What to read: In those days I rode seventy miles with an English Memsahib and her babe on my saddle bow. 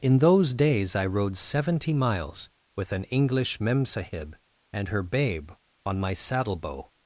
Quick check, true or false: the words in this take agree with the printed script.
true